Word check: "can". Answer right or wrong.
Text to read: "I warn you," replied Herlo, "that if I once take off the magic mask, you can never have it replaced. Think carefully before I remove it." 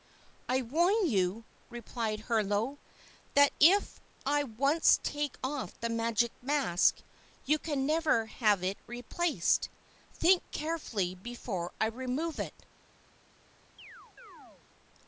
right